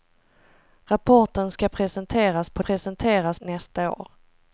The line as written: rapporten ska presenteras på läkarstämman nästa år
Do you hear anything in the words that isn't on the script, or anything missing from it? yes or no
yes